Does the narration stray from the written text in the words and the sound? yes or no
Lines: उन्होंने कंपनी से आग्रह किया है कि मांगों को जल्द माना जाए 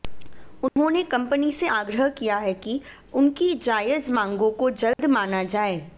yes